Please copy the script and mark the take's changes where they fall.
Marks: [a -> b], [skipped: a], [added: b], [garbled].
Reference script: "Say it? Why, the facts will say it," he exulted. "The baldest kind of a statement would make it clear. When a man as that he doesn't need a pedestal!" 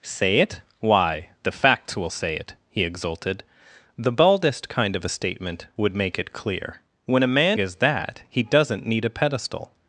"Say it? Why, the facts will say it," he exulted. "The baldest kind of a statement would make it clear. When a man as that he doesn't need a pedestal!"